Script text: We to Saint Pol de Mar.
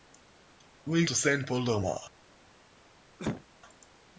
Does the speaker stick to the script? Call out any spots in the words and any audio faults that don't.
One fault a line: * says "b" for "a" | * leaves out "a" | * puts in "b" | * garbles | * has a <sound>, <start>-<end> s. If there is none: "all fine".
* has a cough, 3.2-3.4 s